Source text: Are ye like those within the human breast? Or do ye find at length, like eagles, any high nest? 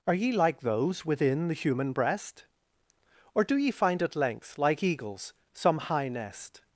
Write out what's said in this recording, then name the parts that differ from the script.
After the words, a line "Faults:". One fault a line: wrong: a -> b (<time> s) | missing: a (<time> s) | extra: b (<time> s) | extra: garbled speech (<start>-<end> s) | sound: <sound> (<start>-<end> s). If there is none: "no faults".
Are ye like those within the human breast? Or do ye find at length, like eagles, some high nest?
Faults:
wrong: any -> some (5.5 s)